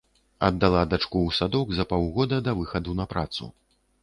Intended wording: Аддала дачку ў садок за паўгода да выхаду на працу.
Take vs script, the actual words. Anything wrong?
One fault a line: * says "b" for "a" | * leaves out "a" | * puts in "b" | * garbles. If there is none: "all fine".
all fine